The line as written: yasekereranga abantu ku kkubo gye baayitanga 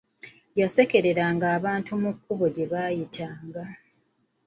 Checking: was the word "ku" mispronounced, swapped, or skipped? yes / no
yes